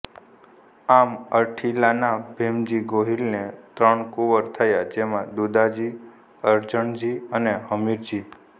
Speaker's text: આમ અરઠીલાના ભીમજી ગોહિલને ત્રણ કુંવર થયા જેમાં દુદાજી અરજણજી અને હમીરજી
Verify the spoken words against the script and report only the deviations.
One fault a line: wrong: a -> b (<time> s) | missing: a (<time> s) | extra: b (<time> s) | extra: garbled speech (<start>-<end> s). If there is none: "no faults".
no faults